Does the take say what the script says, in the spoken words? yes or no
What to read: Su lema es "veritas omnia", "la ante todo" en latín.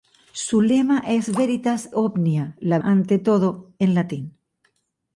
yes